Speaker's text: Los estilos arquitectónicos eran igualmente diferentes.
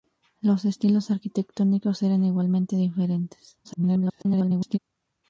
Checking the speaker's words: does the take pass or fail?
fail